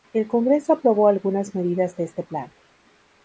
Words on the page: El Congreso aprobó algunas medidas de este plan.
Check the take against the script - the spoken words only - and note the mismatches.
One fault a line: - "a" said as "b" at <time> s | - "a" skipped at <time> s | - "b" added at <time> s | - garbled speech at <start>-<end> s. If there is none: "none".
none